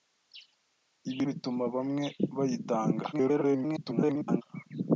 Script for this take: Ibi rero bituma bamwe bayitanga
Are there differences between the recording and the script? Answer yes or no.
yes